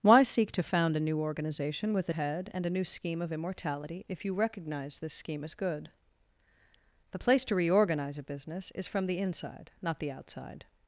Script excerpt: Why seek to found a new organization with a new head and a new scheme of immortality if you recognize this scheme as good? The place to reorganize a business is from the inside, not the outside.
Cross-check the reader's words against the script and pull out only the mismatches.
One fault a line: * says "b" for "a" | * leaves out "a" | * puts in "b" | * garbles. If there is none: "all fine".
* leaves out "new"